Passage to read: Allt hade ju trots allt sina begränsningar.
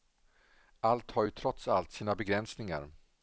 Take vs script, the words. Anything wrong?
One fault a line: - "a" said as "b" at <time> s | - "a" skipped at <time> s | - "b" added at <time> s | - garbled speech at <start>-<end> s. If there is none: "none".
- "hade" said as "har" at 1.1 s